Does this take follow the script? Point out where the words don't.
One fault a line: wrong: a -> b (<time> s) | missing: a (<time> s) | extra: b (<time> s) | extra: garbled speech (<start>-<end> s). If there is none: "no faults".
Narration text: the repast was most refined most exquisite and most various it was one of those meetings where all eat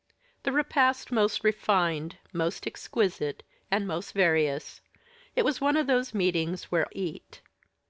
missing: was (1.1 s)
missing: all (6.9 s)